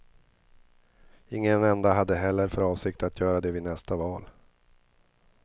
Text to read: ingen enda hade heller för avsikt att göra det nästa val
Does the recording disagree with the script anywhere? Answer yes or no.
yes